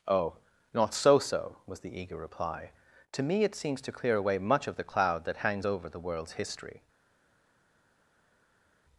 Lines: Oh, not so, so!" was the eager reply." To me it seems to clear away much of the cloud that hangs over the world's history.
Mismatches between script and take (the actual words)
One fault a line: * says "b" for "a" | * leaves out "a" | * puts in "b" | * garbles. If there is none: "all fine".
all fine